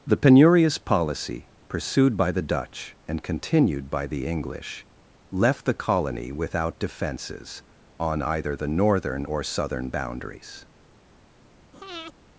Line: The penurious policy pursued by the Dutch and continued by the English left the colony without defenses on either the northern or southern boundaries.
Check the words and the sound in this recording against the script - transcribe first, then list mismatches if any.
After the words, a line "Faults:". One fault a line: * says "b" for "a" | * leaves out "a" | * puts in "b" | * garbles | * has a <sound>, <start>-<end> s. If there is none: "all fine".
The penurious policy pursued by the Dutch and continued by the English left the colony without defenses on either the northern or southern boundaries.
Faults:
* has a breath, 11.7-12.1 s